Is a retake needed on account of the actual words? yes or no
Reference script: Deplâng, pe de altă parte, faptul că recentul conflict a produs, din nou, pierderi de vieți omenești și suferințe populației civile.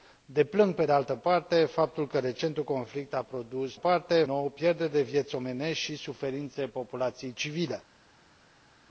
yes